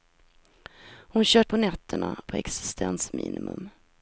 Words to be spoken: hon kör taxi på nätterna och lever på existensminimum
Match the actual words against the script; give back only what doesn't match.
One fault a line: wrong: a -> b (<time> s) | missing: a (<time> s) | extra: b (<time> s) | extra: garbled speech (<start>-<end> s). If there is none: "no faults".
missing: taxi (1.4 s)
missing: och lever (2.2 s)